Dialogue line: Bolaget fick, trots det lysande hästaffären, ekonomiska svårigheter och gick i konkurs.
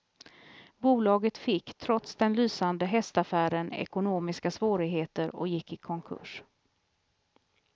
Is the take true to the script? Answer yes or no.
no